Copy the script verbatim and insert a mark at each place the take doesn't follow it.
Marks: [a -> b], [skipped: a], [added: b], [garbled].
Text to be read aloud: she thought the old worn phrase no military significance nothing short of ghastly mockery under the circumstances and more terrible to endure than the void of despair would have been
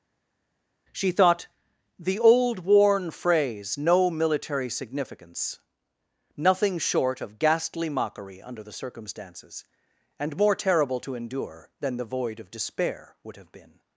she thought the old worn phrase no military significance nothing short of ghastly mockery under the circumstances and more terrible to endure than the void of despair would have been